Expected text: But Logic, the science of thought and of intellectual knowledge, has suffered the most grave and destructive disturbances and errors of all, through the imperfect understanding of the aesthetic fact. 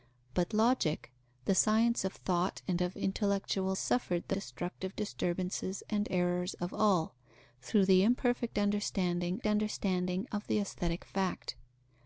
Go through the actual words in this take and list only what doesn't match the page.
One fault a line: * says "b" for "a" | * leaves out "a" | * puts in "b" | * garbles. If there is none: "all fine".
* leaves out "knowledge has"
* leaves out "most grave and"
* puts in "understanding"